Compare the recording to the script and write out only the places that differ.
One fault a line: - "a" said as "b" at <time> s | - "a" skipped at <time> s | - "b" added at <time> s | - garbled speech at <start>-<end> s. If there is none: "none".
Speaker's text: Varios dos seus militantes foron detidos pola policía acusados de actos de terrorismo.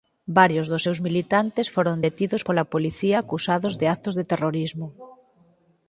none